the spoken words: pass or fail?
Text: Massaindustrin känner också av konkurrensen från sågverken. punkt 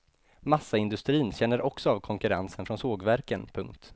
pass